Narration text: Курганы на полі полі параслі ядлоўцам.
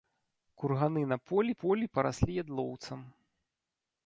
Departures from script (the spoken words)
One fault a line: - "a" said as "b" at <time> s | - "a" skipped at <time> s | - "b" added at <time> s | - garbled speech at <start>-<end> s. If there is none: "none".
none